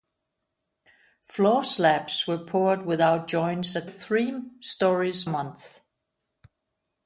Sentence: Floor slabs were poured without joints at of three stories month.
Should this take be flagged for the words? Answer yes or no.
no